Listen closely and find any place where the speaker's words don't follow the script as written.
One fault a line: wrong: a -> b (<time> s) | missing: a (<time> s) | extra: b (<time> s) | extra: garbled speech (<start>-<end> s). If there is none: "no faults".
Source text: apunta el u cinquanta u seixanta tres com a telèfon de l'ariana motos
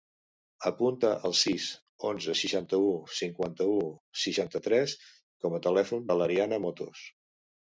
extra: sis onze seixanta (1.4 s)